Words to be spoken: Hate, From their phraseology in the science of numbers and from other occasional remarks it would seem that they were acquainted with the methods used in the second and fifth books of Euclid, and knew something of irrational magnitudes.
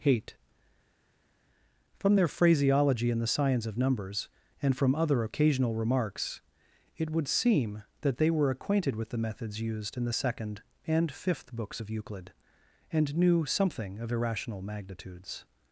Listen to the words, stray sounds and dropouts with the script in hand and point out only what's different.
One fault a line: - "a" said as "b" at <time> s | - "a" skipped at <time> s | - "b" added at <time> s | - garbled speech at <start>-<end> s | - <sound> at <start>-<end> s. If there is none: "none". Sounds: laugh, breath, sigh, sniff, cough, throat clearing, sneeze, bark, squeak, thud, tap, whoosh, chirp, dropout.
none